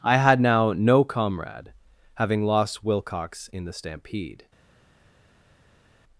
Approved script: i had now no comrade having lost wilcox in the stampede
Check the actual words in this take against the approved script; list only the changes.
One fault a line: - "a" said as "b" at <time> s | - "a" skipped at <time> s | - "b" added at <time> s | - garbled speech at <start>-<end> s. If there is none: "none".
none